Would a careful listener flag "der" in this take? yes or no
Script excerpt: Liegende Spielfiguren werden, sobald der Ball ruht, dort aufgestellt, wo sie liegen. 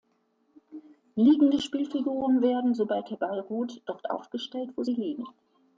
no